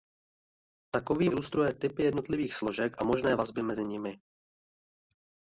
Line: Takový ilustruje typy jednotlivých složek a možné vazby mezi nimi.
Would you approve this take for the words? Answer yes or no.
yes